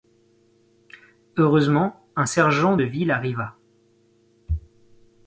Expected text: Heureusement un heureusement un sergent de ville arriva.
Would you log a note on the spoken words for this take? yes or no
yes